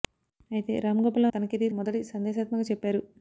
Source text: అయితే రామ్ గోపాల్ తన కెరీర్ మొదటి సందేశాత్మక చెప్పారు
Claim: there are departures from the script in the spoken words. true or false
false